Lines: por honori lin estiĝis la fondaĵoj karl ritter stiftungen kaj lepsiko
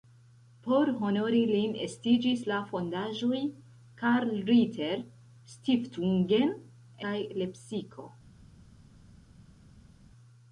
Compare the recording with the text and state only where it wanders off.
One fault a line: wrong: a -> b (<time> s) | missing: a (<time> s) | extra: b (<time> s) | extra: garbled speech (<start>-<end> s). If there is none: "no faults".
no faults